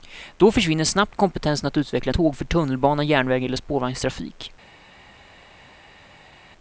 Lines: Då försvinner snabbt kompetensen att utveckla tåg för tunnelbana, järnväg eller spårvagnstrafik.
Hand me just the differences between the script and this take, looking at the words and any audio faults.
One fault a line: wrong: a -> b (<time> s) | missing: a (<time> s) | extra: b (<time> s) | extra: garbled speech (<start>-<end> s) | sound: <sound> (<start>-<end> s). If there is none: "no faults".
no faults